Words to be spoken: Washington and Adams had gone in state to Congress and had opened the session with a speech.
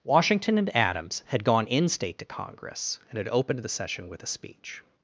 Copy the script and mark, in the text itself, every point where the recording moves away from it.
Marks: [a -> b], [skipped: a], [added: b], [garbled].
Washington and Adams had gone in state to Congress and had opened the session with a speech.